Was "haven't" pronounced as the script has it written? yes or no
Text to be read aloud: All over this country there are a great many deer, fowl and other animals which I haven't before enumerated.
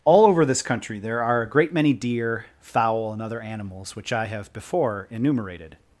no